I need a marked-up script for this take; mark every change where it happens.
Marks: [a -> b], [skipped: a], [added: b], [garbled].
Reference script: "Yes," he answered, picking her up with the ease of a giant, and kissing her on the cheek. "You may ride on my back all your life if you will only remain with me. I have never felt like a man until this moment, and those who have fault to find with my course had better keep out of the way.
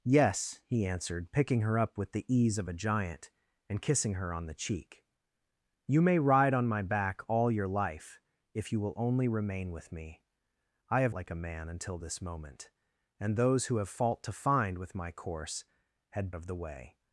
"Yes," he answered, picking her up with the ease of a giant, and kissing her on the cheek. "You may ride on my back all your life if you will only remain with me. I have [skipped: never felt] like a man until this moment, and those who have fault to find with my course had [skipped: better keep out] of the way.